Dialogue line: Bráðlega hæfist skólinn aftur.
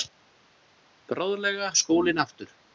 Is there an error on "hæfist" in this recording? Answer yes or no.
yes